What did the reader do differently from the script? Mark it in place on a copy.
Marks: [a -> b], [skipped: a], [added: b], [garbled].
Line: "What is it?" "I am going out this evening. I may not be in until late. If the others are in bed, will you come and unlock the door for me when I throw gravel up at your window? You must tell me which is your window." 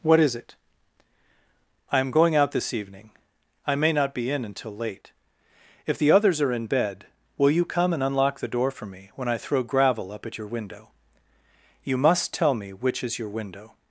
"What is it?" "I am going out this evening. I may not be in until late. If the others are in bed, will you come and unlock the door for me when I throw gravel up at your window? You must tell me which is your window."